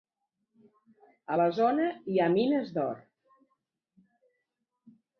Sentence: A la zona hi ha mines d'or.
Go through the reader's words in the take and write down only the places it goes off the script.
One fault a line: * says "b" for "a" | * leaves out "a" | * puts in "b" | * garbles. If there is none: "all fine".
all fine